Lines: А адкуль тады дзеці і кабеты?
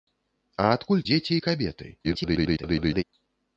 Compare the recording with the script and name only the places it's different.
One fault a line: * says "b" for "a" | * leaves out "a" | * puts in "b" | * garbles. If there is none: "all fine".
* leaves out "тады"
* garbles